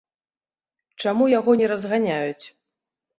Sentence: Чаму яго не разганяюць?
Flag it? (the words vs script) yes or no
no